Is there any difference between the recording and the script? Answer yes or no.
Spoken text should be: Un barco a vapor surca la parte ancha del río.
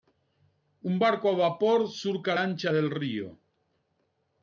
yes